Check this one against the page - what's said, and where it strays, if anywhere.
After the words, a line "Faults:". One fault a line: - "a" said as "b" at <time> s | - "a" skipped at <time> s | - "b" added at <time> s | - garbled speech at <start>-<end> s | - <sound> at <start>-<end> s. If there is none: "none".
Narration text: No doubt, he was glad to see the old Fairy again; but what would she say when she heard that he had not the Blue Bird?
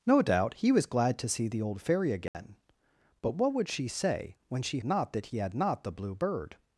No doubt, he was glad to see the old Fairy again; but what would she say when she not that he had not the Blue Bird?
Faults:
- dropout at 2.3-2.3 s
- "heard" said as "not" at 4.8 s